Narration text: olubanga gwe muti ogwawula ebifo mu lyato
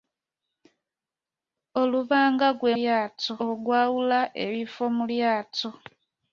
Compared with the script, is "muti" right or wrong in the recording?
wrong